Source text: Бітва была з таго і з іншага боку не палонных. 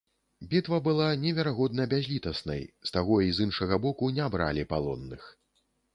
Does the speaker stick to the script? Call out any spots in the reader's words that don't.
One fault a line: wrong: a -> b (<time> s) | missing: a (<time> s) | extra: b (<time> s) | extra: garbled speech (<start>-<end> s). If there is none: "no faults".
extra: неверагодна бязлітаснай (1.2 s)
extra: бралі (4.4 s)